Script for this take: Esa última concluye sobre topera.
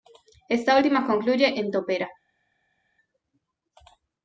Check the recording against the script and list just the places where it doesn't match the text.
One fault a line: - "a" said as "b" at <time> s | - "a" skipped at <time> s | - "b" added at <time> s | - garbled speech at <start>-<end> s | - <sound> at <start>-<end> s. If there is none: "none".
- "Esa" said as "Esta" at 0.5 s
- "sobre" said as "en" at 1.6 s